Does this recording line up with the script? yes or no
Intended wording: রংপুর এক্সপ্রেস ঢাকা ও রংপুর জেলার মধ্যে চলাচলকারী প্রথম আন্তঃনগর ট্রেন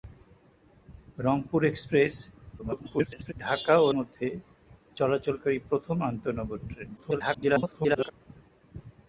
no